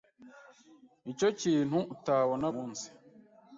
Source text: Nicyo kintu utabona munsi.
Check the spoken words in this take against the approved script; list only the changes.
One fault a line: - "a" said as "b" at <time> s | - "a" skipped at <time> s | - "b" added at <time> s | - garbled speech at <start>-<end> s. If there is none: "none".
none